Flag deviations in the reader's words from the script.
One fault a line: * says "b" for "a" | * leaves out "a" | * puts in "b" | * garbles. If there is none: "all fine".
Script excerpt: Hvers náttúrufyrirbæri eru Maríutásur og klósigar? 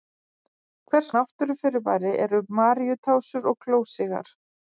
all fine